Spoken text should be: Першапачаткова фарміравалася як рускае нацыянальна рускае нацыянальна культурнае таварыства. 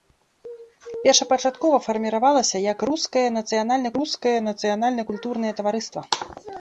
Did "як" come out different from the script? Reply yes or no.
no